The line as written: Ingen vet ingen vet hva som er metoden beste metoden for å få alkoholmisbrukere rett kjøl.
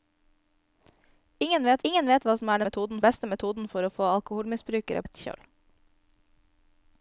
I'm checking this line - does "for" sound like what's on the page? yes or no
yes